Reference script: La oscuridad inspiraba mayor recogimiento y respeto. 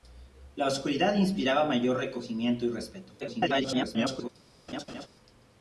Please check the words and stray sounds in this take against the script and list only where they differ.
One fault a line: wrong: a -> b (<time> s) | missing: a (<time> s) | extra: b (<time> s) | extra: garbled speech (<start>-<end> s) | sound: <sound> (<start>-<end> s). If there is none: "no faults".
extra: garbled speech (3.2-4.3 s)
sound: laugh (4.7-5.1 s)